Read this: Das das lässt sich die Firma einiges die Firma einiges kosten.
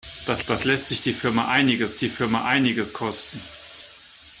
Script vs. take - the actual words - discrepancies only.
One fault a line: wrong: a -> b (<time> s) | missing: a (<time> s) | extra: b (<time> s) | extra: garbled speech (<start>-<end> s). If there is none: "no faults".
no faults